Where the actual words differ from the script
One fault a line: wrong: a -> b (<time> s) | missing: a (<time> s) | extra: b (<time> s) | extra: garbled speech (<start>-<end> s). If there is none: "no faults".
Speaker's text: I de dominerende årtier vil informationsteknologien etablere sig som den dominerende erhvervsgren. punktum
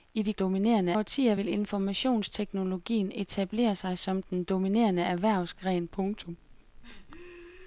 no faults